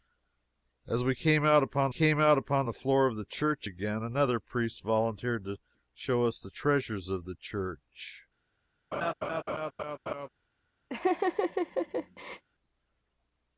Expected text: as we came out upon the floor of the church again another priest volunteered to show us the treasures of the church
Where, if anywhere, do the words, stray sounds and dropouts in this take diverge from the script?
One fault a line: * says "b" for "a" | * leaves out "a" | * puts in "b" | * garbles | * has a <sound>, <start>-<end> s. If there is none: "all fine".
* puts in "came out upon"
* has a laugh, 8.9-10.3 s
* has a laugh, 10.9-12.4 s